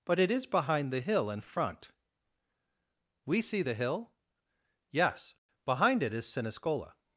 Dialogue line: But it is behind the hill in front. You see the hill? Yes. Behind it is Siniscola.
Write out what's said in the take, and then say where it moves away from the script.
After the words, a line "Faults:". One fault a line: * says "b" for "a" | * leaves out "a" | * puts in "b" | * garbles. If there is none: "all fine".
But it is behind the hill in front. We see the hill? Yes. Behind it is Siniscola.
Faults:
* says "We" for "You"